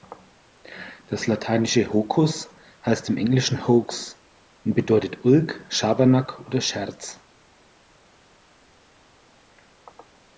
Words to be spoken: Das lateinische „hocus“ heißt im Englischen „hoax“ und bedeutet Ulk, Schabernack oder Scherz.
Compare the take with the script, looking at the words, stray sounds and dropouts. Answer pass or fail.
pass